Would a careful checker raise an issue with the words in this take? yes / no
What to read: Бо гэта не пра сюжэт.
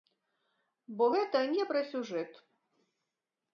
no